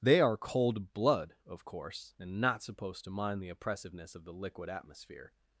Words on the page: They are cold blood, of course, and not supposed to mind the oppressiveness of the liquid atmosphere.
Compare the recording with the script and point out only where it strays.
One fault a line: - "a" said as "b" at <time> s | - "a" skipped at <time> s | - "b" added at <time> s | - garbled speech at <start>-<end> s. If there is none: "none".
none